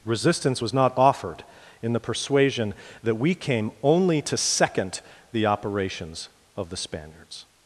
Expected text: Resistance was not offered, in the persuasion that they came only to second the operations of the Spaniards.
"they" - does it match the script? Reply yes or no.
no